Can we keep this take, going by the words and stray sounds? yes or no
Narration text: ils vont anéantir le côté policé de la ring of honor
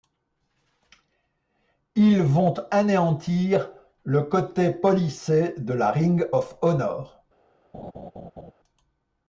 no